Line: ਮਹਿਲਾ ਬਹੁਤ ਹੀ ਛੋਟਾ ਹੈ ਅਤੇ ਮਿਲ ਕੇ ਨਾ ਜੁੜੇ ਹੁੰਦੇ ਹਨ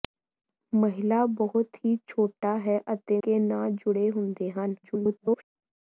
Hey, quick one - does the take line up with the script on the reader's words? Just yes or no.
no